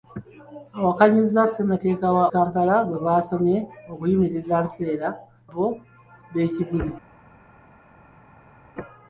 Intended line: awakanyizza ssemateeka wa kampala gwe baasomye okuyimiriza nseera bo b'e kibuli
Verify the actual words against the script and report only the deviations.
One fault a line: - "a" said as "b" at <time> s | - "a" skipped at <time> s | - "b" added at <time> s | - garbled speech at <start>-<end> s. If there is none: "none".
none